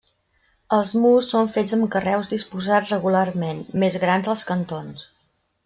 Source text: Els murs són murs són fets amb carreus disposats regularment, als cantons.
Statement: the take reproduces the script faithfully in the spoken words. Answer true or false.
false